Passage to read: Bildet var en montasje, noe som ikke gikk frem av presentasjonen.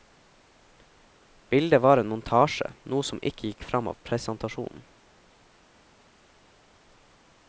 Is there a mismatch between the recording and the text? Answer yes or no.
no